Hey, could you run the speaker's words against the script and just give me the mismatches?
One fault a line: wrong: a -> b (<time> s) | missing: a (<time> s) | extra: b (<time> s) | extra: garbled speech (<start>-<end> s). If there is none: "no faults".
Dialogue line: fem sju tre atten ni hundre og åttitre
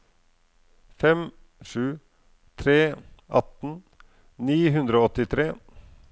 no faults